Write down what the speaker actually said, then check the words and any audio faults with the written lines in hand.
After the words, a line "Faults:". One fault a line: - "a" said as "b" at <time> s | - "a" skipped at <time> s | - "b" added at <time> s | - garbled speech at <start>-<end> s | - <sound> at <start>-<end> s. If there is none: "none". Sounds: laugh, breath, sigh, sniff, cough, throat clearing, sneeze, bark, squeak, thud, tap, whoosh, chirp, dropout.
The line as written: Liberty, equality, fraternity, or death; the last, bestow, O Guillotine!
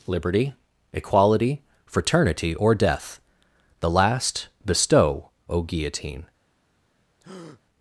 Liberty, equality, fraternity, or death; the last, bestow, O Guillotine!
Faults:
- breath at 7.2-7.6 s